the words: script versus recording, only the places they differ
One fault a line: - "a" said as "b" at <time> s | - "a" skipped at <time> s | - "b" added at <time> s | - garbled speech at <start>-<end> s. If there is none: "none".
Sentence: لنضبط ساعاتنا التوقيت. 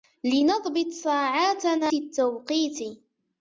none